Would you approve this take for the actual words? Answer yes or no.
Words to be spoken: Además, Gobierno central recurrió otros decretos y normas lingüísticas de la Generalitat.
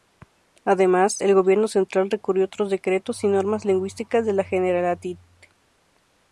no